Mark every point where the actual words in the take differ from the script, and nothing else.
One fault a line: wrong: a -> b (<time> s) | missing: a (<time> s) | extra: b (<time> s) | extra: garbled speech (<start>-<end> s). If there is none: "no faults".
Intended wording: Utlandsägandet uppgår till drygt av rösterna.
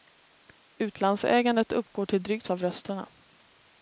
no faults